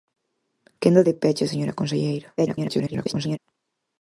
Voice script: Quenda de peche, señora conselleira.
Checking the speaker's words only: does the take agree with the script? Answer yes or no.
no